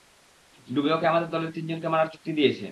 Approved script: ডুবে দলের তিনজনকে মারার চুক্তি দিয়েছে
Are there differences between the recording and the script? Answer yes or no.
yes